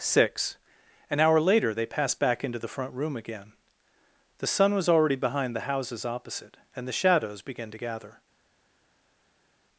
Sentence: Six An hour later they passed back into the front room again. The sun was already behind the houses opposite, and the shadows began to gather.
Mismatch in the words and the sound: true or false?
false